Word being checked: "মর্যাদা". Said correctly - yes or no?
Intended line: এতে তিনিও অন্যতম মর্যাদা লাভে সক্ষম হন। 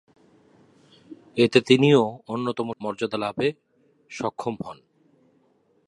yes